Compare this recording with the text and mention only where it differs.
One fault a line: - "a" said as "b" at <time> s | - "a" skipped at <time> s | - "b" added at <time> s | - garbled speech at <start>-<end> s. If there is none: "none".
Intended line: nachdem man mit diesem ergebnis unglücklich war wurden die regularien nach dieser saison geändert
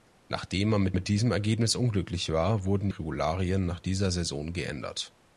- "mit" added at 0.9 s
- "die" skipped at 2.9 s